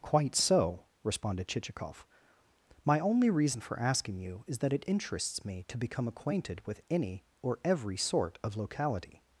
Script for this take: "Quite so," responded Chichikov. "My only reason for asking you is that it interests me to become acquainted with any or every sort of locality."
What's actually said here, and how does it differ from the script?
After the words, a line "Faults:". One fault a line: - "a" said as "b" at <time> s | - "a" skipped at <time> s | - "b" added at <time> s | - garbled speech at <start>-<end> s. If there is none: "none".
"Quite so," responded Chichikov. "My only reason for asking you is that it interests me to become acquainted with any or every sort of locality."
Faults:
none